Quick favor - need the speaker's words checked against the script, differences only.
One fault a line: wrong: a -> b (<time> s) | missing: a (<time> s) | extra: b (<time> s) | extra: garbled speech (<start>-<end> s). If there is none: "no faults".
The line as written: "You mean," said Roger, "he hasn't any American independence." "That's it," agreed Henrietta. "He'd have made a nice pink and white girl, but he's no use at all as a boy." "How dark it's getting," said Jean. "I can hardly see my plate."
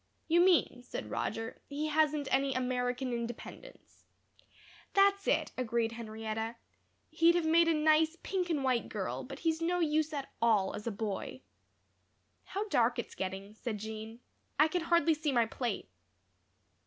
no faults